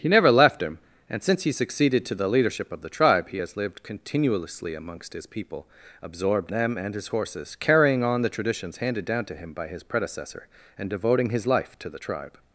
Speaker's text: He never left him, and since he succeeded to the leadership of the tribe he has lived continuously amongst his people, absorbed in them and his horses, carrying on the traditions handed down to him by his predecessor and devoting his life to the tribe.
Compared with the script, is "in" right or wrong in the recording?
wrong